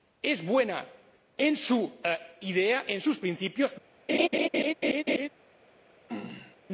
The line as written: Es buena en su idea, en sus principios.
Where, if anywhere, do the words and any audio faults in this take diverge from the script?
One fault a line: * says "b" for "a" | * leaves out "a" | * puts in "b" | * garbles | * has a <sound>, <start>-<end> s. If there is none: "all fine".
* has a laugh, 4.1-5.3 s
* has a throat clearing, 6.1-6.6 s